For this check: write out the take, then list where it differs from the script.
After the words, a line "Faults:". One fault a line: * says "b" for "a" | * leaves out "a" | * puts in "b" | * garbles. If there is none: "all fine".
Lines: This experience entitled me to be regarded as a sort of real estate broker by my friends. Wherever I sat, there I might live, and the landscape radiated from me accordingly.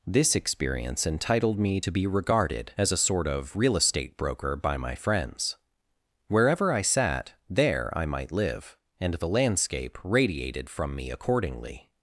This experience entitled me to be regarded as a sort of real estate broker by my friends. Wherever I sat, there I might live, and the landscape radiated from me accordingly.
Faults:
all fine